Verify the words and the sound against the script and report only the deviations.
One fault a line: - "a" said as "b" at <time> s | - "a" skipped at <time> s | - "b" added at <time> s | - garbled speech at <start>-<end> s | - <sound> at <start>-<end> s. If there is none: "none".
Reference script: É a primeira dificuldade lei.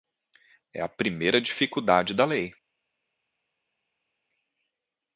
- "da" added at 2.1 s